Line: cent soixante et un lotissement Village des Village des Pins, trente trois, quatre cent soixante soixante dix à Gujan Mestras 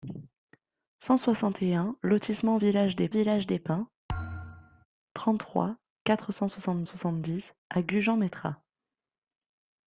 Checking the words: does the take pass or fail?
pass